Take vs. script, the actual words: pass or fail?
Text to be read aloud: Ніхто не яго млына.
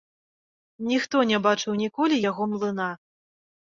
fail